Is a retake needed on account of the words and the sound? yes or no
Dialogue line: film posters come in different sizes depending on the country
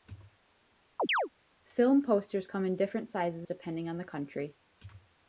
yes